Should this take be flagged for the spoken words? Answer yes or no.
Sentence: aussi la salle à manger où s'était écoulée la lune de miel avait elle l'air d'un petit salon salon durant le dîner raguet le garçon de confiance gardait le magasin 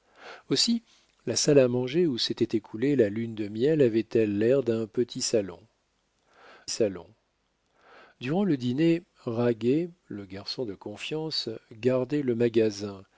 no